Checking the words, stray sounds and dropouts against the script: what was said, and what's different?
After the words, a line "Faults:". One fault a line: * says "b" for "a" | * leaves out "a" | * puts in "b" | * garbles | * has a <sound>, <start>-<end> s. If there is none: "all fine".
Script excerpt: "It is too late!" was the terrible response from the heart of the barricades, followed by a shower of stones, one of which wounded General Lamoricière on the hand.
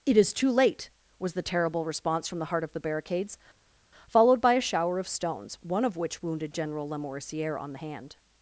"It is too late!" was the terrible response from the heart of the barricades, followed by a shower of stones, one of which wounded General Lamoricière on the hand.
Faults:
all fine